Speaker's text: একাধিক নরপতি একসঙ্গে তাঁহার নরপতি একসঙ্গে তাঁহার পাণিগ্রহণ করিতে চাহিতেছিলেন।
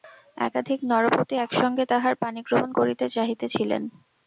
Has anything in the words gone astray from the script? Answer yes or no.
yes